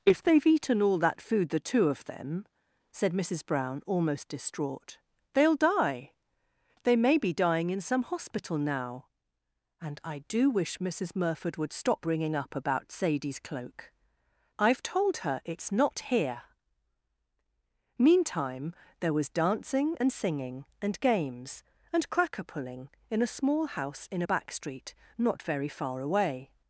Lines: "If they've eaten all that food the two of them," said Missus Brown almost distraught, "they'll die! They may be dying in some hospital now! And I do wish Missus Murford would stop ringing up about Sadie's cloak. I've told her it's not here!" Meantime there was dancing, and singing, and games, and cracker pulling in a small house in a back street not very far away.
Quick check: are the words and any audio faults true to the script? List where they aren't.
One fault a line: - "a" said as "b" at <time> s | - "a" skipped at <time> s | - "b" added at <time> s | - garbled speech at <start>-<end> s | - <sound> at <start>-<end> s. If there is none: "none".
none